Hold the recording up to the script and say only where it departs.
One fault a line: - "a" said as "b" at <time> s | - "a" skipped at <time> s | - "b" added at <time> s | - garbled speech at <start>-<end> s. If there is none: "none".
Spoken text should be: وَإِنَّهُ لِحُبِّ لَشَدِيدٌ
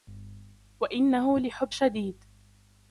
none